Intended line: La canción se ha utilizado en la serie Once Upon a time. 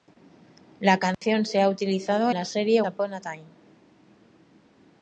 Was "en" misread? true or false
true